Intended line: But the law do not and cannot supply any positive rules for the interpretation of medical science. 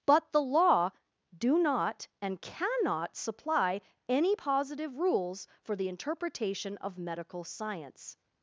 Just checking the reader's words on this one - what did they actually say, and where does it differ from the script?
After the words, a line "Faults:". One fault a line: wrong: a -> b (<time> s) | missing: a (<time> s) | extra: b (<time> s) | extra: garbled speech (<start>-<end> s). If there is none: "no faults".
But the law do not and cannot supply any positive rules for the interpretation of medical science.
Faults:
no faults